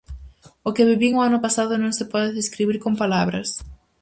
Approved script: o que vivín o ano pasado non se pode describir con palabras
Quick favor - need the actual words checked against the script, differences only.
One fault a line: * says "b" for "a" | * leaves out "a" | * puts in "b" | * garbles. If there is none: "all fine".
all fine